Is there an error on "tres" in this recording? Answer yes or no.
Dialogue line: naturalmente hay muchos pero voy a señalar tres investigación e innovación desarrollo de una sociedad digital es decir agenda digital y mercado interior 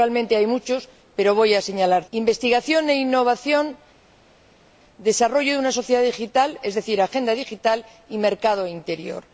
yes